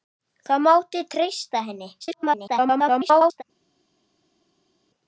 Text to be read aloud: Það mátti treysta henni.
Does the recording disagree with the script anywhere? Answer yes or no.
yes